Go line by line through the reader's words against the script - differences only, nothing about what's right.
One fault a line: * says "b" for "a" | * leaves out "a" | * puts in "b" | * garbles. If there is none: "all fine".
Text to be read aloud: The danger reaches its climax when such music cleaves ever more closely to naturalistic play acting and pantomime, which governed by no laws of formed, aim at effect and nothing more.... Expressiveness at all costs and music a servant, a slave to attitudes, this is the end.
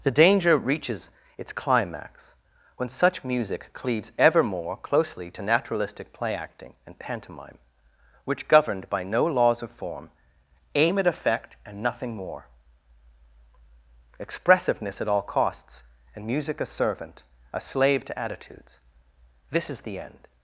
* says "form" for "formed"